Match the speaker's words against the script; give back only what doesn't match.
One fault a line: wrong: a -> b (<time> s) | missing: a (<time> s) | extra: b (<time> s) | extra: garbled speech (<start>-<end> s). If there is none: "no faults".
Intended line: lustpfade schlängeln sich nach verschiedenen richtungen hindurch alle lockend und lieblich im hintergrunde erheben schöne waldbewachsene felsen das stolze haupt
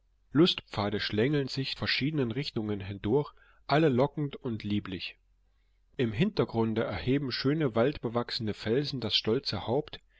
missing: nach (1.8 s)